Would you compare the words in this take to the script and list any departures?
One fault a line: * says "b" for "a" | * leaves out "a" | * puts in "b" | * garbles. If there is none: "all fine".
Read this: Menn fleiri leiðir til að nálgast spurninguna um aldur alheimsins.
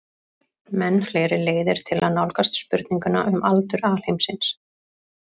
all fine